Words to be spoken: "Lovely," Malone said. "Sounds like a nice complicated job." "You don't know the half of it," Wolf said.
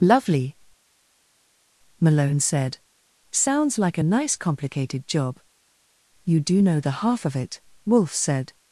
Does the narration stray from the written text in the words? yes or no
yes